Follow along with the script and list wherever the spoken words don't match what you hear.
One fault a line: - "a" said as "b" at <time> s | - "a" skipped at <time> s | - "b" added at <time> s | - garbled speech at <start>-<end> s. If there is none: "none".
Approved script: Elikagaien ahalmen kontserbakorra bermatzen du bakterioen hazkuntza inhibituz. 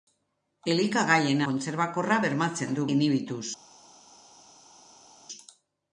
- "ahalmen" skipped at 1.4 s
- "bakterioen hazkuntza" skipped at 2.9 s